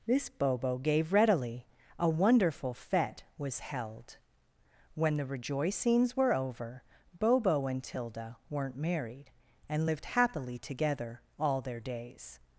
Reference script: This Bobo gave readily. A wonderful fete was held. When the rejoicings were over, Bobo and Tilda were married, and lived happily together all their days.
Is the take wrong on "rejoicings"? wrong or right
right